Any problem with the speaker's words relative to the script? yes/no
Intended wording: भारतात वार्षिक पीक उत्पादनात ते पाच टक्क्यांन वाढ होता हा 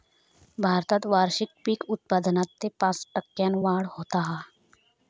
no